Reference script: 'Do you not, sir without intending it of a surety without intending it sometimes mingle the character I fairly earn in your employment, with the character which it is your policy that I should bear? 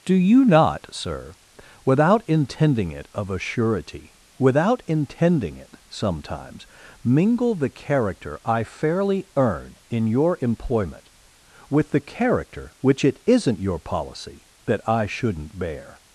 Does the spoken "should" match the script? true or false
false